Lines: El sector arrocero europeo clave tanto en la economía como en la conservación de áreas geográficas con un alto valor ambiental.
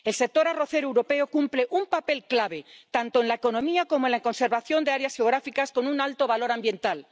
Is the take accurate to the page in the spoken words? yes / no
no